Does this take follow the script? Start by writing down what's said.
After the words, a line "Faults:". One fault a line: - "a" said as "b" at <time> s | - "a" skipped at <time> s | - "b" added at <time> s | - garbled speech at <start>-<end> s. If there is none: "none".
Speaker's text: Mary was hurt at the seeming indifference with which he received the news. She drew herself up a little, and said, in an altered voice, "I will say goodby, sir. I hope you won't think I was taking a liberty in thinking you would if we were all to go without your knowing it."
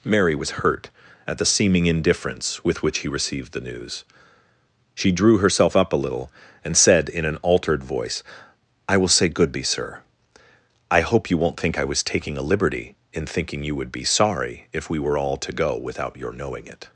Mary was hurt at the seeming indifference with which he received the news. She drew herself up a little, and said, in an altered voice, "I will say goodby, sir. I hope you won't think I was taking a liberty in thinking you would be sorry if we were all to go without your knowing it."
Faults:
- "be sorry" added at 13.9 s